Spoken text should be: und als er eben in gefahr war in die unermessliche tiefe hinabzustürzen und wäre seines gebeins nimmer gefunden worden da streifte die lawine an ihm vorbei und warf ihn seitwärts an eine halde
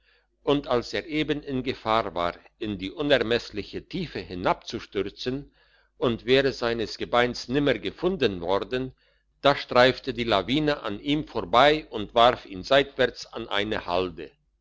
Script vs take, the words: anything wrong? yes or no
no